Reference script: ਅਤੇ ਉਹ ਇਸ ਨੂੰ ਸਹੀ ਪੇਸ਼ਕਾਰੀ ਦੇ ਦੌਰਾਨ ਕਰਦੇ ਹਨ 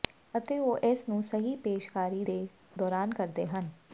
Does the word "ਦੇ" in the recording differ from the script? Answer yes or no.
no